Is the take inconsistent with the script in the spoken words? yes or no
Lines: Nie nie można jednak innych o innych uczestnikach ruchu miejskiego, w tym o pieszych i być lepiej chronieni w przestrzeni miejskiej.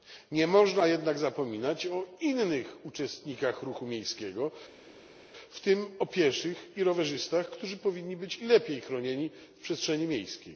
yes